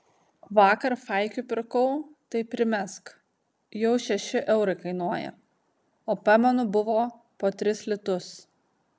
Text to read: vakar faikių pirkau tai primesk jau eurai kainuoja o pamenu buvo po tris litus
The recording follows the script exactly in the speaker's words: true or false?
false